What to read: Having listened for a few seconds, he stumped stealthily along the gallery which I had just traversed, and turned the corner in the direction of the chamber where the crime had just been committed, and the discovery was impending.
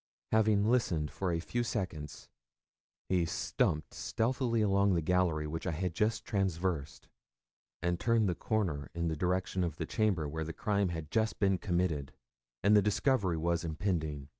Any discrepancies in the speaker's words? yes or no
no